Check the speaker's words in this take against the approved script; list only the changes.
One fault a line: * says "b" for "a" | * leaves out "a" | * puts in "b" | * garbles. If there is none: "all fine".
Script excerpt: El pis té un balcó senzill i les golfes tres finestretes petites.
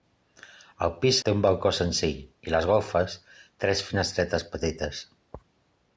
all fine